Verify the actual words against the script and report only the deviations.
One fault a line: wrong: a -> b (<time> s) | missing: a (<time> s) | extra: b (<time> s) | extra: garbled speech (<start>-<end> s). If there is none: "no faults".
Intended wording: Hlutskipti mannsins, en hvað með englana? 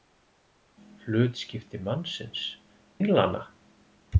missing: en hvað með (2.5 s)